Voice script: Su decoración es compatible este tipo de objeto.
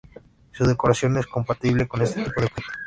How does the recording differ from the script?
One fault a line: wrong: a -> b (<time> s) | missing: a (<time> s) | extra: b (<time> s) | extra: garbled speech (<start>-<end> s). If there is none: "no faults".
extra: con (1.9 s)